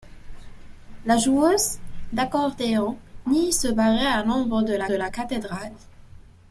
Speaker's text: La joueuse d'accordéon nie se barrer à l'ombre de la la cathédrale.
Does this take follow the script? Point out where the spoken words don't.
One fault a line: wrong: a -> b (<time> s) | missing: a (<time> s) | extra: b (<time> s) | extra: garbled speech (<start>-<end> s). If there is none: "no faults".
no faults